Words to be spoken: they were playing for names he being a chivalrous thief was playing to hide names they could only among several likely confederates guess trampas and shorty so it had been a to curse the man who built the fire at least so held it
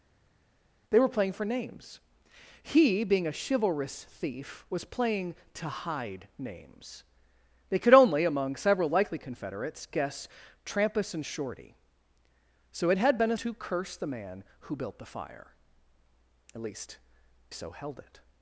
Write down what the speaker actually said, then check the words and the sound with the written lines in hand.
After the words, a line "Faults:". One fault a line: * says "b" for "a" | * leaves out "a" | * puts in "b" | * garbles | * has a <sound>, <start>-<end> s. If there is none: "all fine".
they were playing for names he being a chivalrous thief was playing to hide names they could only among several likely confederates guess trampas and shorty so it had been a to curse the man who built the fire at least so held it
Faults:
all fine